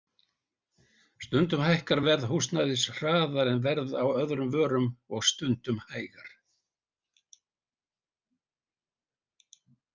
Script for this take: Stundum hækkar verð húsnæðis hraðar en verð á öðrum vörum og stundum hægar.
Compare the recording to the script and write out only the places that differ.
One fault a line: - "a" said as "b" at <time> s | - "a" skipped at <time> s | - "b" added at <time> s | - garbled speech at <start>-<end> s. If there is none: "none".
none